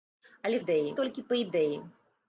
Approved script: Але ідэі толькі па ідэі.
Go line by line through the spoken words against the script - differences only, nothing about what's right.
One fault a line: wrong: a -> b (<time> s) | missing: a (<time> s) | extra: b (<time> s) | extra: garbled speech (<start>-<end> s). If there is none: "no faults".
no faults